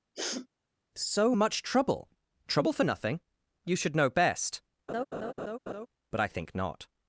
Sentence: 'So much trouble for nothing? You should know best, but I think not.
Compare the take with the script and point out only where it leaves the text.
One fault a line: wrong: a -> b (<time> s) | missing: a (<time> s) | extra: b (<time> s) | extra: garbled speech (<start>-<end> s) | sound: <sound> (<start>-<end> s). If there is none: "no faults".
sound: sniff (0.1-0.5 s)
extra: trouble (2.5 s)
sound: laugh (4.9-5.9 s)